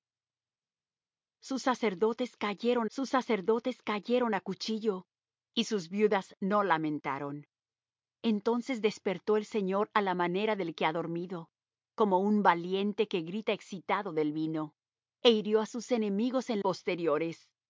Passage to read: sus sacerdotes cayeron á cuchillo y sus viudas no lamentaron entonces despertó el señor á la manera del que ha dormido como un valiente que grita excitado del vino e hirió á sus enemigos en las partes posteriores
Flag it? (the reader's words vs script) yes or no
yes